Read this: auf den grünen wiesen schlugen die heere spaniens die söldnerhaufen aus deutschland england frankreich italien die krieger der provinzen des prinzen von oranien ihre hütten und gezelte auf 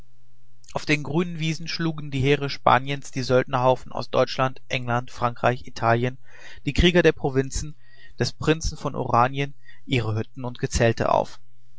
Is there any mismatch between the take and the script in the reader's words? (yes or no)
no